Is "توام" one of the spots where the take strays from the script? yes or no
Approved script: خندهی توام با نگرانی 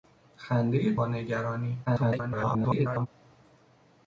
yes